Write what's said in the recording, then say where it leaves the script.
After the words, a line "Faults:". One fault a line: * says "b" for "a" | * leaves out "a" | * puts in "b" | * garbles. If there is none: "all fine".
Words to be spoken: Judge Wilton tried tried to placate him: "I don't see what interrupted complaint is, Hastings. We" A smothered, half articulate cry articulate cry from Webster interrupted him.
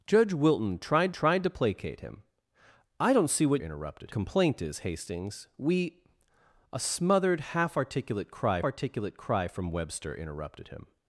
Judge Wilton tried tried to placate him: "I don't see what interrupted complaint is, Hastings. We" A smothered, half articulate cry articulate cry from Webster interrupted him.
Faults:
all fine